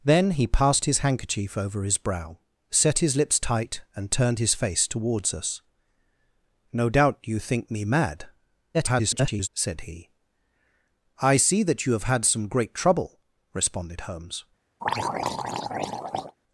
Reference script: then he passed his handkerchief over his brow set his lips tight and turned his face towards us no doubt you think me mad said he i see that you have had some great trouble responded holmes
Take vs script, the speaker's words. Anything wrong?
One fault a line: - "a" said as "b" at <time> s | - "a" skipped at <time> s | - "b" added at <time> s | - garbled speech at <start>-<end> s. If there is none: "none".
- garbled speech at 8.7-9.5 s